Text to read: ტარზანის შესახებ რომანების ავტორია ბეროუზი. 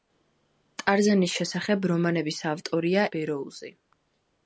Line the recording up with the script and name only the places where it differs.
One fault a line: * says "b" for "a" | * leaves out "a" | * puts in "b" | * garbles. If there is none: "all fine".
all fine